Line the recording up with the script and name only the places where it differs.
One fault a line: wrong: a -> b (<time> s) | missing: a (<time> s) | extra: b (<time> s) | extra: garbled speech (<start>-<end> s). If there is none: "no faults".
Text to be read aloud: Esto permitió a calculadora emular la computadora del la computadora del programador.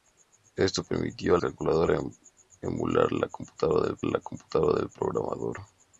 no faults